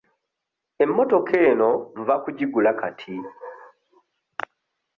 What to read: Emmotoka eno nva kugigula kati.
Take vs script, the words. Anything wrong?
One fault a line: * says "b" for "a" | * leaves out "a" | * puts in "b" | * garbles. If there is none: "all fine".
all fine